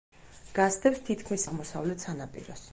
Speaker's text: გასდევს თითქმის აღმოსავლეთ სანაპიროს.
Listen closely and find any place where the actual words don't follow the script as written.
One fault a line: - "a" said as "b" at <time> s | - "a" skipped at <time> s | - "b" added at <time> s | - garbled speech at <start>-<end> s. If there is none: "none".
none